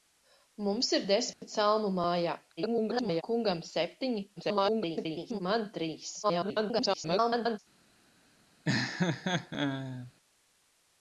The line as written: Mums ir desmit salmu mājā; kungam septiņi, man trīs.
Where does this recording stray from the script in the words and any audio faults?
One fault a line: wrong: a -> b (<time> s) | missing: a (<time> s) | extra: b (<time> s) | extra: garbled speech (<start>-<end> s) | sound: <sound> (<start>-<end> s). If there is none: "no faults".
sound: dropout (1.3-1.4 s)
extra: garbled speech (2.6-3.2 s)
extra: garbled speech (4.4-5.4 s)
extra: garbled speech (6.2-7.6 s)
sound: laugh (8.6-10.1 s)